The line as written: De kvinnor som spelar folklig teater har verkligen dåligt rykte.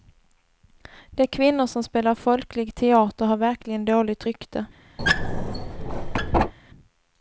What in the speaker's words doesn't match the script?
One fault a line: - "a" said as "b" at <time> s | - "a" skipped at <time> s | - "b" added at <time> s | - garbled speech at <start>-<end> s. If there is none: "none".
none